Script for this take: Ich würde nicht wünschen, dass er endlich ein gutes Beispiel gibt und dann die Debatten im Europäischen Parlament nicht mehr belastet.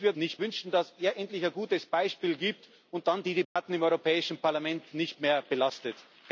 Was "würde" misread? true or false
false